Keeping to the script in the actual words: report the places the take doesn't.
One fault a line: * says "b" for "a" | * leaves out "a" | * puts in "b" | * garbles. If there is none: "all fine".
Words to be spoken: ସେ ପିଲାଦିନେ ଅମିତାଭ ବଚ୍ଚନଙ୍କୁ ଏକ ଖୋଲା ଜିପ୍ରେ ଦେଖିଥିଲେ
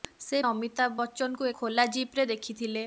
* leaves out "ପିଲାଦିନେ"
* leaves out "ଏକ"